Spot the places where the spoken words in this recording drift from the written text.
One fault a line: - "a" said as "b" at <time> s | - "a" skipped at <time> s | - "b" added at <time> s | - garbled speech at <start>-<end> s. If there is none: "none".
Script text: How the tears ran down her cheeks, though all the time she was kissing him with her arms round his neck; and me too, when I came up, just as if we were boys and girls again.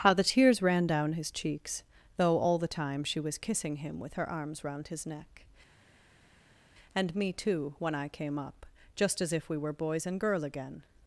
- "her" said as "his" at 1.1 s
- "girls" said as "girl" at 10.2 s